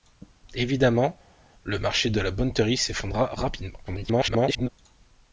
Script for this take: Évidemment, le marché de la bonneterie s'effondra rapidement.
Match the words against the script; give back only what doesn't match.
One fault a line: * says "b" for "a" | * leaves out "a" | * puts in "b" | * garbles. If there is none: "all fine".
* garbles